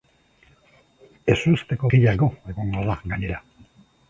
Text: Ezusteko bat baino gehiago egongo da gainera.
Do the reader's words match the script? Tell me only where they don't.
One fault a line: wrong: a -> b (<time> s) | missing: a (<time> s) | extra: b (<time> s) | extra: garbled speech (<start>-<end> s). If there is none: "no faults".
missing: bat baino (1.9 s)